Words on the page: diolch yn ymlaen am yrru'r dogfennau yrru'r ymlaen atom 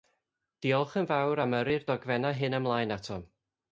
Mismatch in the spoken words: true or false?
true